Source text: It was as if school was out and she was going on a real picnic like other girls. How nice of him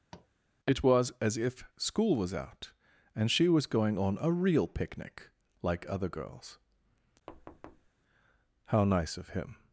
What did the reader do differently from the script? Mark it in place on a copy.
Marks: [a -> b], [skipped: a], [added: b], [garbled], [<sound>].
[tap] It was as if school was out and she was going on a real picnic like other girls. [thud] How nice of him